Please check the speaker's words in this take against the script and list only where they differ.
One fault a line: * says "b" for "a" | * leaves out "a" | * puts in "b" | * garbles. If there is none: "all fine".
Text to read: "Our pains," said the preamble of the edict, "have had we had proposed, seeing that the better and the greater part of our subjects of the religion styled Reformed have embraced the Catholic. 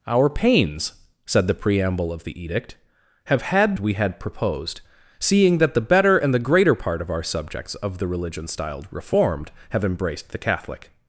all fine